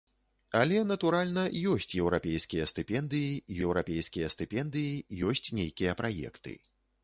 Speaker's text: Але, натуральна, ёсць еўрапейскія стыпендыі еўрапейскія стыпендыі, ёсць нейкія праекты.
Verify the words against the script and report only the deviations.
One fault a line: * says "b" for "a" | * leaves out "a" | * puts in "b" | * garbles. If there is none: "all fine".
all fine